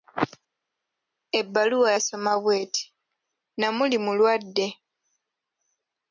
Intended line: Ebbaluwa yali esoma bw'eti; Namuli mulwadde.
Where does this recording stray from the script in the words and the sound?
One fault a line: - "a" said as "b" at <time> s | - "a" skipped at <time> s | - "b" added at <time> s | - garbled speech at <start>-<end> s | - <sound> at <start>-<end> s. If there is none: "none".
- "yali" skipped at 1.9 s